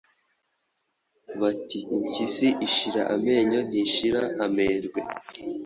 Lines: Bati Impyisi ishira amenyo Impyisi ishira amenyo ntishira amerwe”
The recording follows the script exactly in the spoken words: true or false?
false